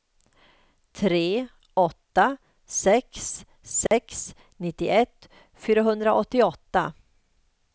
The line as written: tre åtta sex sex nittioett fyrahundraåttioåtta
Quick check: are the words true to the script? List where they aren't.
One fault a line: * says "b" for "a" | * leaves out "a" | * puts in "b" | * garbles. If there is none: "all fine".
all fine